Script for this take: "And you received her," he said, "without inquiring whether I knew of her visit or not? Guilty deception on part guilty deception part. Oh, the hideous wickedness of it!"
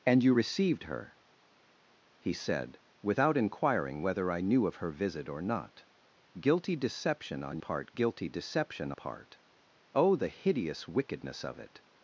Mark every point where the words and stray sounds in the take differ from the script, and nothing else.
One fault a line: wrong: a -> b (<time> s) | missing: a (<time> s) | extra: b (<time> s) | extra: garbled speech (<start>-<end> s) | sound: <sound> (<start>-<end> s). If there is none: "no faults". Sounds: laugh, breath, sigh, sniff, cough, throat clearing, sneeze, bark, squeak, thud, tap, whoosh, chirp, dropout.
no faults